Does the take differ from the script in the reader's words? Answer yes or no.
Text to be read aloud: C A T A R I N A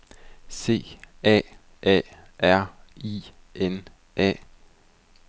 yes